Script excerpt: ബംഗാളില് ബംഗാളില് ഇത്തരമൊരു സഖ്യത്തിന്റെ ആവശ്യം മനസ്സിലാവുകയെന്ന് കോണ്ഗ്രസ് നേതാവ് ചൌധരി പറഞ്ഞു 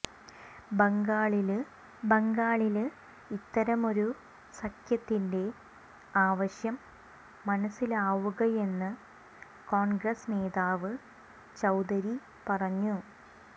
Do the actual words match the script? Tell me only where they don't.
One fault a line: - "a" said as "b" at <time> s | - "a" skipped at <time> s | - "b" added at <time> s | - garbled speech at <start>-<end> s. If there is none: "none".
none